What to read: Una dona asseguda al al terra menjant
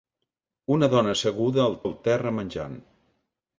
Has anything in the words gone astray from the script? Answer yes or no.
no